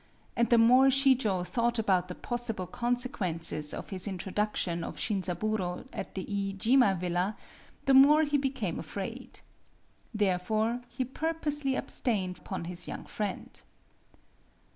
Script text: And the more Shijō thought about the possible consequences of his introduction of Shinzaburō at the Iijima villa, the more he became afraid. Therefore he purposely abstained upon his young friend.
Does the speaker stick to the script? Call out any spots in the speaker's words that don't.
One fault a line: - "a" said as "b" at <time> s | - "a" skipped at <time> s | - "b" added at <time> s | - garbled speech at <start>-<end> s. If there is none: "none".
none